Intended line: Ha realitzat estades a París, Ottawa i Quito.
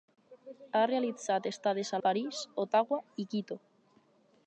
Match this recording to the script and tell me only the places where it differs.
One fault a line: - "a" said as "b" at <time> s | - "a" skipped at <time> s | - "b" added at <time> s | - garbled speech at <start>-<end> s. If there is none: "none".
none